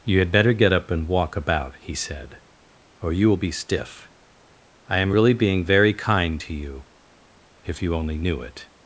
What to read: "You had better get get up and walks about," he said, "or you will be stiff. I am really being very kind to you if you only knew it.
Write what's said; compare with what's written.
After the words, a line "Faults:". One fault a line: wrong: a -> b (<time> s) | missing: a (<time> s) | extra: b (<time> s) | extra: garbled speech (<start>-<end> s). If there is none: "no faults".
"You had better get up and walk about," he said, "or you will be stiff. I am really being very kind to you if you only knew it.
Faults:
missing: get (0.7 s)
wrong: walks -> walk (1.1 s)